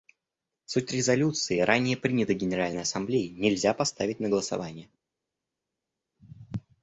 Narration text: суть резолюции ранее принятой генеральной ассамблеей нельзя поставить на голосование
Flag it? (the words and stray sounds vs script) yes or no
no